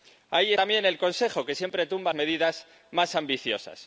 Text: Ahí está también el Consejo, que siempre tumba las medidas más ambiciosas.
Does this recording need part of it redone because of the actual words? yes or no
yes